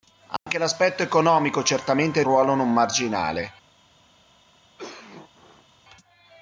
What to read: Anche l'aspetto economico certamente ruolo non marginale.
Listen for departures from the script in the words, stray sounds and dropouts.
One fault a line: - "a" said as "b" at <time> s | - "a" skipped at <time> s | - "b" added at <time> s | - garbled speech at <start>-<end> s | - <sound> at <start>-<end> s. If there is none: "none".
- dropout at 0.4-0.5 s
- cough at 4.8-5.7 s